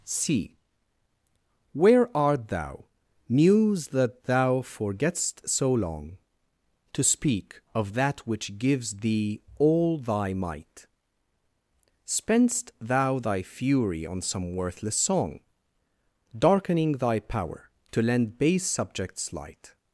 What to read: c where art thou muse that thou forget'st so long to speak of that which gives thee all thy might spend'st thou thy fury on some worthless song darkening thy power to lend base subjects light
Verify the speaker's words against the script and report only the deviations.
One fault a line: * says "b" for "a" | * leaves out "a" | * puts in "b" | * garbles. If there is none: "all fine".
all fine